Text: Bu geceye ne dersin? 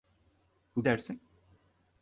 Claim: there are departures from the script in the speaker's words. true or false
true